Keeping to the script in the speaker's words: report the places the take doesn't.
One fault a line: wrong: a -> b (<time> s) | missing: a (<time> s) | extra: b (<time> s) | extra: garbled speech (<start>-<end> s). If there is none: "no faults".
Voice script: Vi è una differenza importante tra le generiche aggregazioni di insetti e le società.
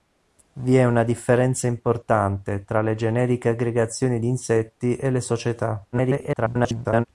extra: garbled speech (5.9-7.0 s)